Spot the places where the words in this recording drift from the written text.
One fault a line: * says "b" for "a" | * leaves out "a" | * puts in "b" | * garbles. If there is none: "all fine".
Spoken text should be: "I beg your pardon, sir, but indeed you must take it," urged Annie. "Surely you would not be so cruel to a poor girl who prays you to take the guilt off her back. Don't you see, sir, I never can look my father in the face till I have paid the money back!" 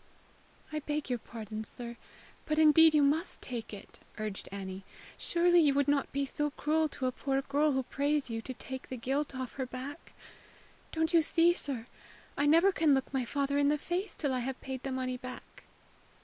all fine